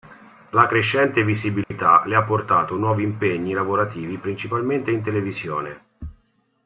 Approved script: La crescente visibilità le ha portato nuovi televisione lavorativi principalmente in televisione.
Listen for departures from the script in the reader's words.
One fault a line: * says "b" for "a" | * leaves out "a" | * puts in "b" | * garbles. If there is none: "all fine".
* says "impegni" for "televisione"